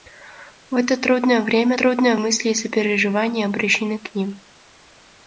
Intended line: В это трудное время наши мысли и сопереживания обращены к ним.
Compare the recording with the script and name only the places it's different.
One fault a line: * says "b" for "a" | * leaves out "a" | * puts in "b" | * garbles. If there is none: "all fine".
* says "трудное" for "наши"